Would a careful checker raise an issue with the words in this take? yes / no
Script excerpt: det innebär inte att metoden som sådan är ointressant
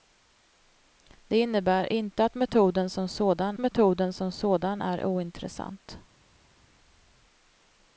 yes